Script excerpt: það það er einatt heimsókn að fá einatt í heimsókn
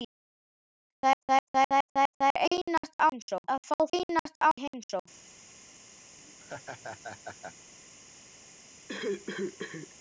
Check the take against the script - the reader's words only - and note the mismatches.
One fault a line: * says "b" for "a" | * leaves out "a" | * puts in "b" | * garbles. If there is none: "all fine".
all fine